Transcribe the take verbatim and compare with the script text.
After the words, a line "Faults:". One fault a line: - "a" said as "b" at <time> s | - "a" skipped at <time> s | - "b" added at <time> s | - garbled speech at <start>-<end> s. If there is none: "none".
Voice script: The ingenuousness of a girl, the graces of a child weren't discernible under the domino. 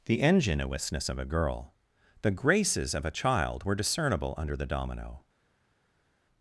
The ingenuousness of a girl, the graces of a child were discernible under the domino.
Faults:
- "weren't" said as "were" at 3.6 s